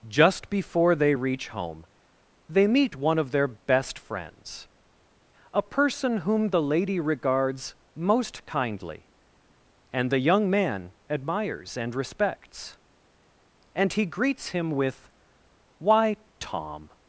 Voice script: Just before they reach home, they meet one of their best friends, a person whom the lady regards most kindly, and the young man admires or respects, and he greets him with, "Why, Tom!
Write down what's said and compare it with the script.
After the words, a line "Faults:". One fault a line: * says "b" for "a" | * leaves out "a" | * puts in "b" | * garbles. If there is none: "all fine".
Just before they reach home, they meet one of their best friends, a person whom the lady regards most kindly, and the young man admires and respects, and he greets him with, "Why, Tom!
Faults:
* says "and" for "or"